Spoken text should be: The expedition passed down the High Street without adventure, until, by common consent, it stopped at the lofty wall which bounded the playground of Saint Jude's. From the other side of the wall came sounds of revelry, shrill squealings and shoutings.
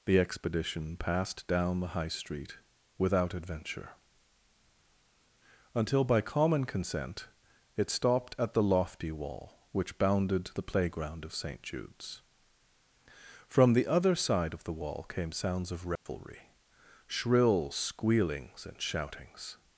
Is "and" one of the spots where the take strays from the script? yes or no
no